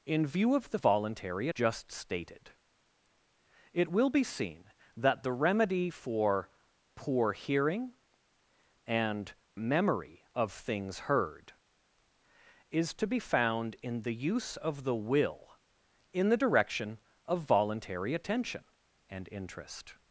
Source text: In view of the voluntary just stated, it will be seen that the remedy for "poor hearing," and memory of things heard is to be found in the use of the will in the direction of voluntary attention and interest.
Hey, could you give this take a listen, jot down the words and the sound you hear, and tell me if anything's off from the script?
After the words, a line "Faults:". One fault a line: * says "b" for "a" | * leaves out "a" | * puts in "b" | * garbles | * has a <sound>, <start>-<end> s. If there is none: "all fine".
In view of the voluntary just stated, it will be seen that the remedy for "poor hearing," and memory of things heard is to be found in the use of the will in the direction of voluntary attention and interest.
Faults:
all fine